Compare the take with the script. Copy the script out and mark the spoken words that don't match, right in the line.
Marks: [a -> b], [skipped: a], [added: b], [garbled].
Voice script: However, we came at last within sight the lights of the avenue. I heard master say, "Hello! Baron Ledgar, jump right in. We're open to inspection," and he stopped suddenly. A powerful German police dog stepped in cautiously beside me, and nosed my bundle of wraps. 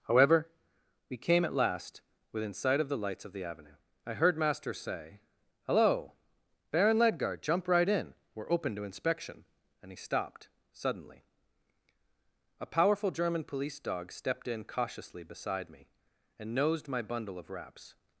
However, we came at last within sight [added: of] the lights of the avenue. I heard master say, "Hello! Baron Ledgar, jump right in. We're open to inspection," and he stopped suddenly. A powerful German police dog stepped in cautiously beside me, and nosed my bundle of wraps.